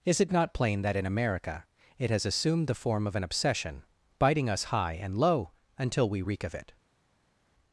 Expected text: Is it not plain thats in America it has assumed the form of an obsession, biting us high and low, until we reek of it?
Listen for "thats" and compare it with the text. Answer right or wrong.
wrong